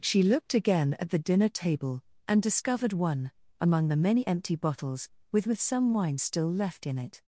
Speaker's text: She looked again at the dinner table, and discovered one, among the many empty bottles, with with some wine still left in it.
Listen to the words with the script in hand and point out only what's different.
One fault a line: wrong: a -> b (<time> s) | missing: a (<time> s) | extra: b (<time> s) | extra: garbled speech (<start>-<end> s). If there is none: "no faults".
no faults